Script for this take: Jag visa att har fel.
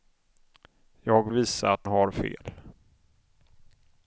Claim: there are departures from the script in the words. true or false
false